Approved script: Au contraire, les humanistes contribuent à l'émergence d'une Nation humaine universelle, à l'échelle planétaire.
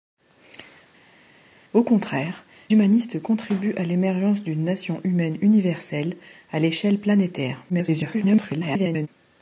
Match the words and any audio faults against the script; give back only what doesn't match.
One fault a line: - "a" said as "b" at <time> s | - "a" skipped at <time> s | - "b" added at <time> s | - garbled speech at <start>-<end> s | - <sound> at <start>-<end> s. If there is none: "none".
- "les" skipped at 2.5 s
- garbled speech at 7.7-9.1 s